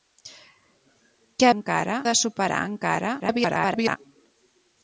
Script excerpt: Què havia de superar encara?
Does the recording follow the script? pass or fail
fail